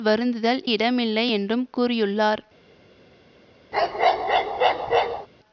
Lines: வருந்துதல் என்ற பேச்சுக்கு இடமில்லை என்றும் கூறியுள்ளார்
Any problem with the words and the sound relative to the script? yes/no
yes